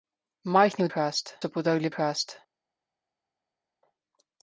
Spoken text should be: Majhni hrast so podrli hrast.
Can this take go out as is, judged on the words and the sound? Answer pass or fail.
pass